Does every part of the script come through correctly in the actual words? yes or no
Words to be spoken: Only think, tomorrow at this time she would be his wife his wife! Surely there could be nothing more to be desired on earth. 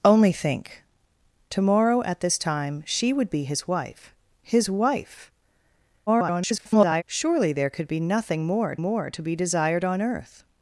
no